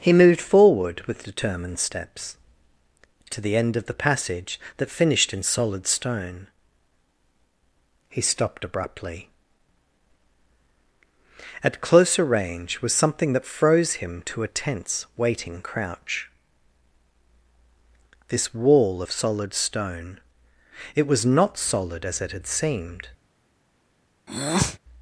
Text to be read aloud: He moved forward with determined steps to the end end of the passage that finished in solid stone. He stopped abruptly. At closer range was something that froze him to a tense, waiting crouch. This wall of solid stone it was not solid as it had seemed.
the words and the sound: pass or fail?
fail